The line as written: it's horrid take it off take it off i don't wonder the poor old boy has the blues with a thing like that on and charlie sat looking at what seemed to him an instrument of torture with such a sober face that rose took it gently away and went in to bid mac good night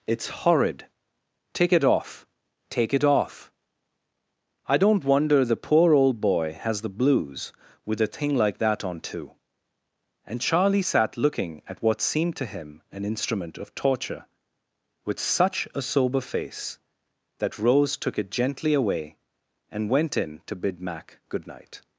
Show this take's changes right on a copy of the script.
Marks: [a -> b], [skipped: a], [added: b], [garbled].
it's horrid take it off take it off i don't wonder the poor old boy has the blues with a thing like that on [added: too] and charlie sat looking at what seemed to him an instrument of torture with such a sober face that rose took it gently away and went in to bid mac good night